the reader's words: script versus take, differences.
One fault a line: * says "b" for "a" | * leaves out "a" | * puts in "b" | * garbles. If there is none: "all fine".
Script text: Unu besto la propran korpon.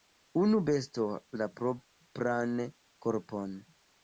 all fine